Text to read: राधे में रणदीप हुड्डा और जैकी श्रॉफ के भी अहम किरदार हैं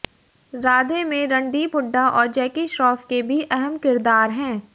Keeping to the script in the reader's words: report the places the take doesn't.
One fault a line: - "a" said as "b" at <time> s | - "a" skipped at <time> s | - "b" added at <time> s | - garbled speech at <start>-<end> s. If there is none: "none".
none